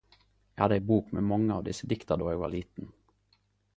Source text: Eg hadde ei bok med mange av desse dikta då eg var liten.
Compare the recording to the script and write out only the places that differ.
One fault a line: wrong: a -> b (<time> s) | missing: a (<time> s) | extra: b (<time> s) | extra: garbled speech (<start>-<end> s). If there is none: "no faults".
no faults